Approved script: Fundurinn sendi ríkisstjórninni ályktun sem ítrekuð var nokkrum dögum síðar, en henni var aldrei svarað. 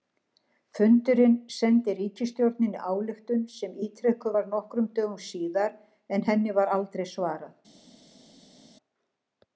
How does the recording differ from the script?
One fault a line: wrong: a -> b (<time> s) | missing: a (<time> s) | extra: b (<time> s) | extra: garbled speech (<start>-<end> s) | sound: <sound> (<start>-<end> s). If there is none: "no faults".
no faults